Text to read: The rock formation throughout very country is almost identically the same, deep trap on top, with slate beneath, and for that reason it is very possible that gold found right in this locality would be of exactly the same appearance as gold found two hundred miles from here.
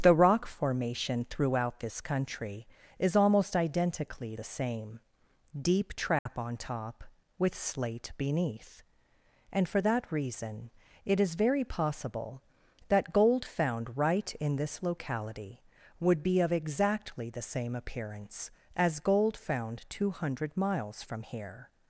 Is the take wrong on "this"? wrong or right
right